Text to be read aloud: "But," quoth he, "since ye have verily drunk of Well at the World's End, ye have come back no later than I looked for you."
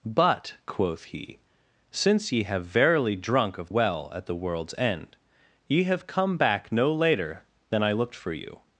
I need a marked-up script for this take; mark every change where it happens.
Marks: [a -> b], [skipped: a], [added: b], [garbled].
"But," quoth he, "since ye have verily drunk of Well at the World's End, ye have come back no later than I looked for you."